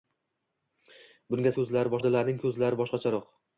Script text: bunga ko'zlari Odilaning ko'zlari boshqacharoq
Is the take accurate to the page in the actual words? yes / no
yes